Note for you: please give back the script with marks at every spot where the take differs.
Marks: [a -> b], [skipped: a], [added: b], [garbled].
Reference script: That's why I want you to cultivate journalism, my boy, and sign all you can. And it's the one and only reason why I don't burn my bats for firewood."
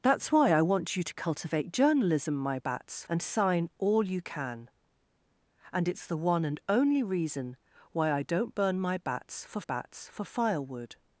That's why I want you to cultivate journalism, my [boy, -> bats] and sign all you can. And it's the one and only reason why I don't burn my bats for [added: bats for] firewood."